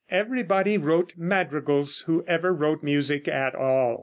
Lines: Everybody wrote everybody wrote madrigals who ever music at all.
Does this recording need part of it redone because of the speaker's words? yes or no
yes